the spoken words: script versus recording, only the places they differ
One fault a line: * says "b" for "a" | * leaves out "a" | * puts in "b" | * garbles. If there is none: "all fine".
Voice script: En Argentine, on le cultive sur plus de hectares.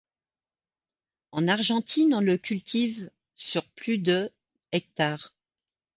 all fine